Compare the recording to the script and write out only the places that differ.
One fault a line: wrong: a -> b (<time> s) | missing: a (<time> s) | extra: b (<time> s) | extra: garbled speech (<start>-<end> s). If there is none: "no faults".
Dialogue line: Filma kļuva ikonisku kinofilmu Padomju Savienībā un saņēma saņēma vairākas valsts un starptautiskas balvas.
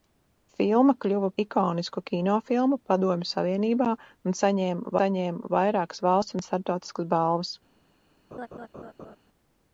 no faults